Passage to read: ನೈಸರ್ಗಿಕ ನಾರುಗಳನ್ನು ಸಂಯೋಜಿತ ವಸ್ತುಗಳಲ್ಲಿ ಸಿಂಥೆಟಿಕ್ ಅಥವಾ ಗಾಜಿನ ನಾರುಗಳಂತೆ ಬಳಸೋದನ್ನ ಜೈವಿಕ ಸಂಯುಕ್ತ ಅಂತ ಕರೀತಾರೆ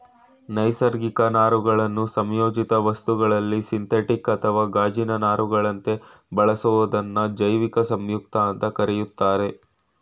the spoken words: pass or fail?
pass